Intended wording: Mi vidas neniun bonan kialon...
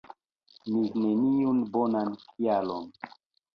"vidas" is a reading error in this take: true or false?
true